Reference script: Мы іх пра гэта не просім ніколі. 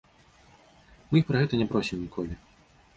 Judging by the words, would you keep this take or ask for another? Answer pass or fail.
pass